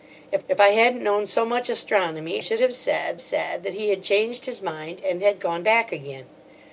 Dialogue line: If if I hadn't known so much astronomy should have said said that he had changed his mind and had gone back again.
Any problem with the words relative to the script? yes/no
no